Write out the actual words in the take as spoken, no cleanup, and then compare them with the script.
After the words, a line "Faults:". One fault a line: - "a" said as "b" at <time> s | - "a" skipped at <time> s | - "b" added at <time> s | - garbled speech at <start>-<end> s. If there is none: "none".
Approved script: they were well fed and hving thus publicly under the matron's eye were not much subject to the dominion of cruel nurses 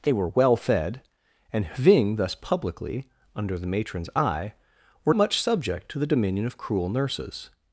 they were well fed and hving thus publicly under the matron's eye were much subject to the dominion of cruel nurses
Faults:
- "not" skipped at 5.1 s